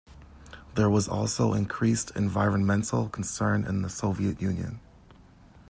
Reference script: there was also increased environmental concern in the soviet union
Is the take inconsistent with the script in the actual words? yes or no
no